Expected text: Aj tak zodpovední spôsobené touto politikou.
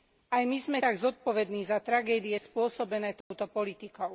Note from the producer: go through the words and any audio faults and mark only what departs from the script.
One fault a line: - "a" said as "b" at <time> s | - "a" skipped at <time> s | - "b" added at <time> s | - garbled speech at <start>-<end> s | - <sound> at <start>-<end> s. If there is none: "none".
- "my sme" added at 0.4 s
- "za tragédie" added at 1.7 s
- dropout at 3.2-3.3 s